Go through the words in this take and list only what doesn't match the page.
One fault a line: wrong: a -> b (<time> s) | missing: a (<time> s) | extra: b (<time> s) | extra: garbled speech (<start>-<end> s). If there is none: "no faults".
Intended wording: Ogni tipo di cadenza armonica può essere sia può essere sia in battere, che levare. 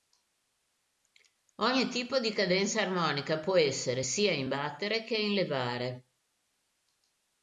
missing: può essere sia (4.3 s)
extra: in (5.2 s)